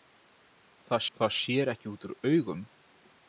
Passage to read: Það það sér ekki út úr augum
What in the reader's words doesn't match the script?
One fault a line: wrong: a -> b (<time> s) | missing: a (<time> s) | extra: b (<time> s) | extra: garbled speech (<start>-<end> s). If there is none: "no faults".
no faults